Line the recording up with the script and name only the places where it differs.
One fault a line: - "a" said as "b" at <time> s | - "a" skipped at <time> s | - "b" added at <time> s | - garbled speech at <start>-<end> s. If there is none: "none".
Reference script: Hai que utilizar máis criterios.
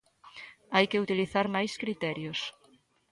none